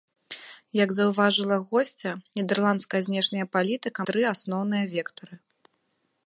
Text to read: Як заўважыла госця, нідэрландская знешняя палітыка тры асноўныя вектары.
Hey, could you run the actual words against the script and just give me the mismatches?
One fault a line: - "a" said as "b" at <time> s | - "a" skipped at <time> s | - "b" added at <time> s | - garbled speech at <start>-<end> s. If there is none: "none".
none